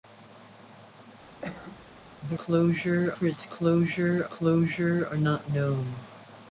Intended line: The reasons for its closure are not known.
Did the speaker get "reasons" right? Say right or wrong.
wrong